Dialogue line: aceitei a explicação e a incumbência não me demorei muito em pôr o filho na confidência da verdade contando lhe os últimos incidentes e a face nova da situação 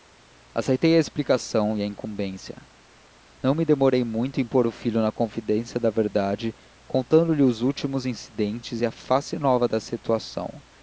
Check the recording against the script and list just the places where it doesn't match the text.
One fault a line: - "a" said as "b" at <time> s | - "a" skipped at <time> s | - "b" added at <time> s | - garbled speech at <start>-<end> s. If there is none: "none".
none